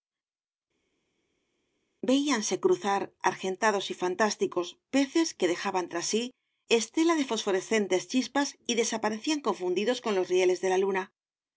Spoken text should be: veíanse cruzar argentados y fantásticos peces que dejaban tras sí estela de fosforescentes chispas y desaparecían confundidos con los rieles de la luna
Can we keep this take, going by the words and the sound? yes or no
yes